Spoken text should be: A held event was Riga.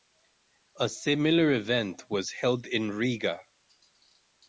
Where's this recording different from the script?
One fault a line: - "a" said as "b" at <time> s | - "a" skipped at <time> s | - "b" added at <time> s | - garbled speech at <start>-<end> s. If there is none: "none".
- "held" said as "similar" at 0.9 s
- "held in" added at 2.3 s